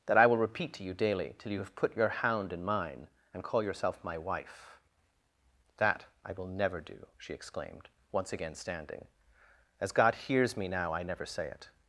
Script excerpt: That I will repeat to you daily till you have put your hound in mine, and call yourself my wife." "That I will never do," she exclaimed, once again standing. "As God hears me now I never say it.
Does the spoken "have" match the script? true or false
true